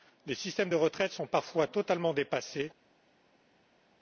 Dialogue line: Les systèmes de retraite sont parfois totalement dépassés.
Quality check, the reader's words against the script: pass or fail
pass